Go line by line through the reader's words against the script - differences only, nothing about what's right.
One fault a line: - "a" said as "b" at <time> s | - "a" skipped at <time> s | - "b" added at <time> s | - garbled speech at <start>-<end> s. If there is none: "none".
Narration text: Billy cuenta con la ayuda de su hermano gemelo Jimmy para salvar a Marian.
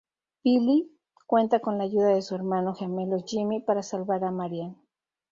none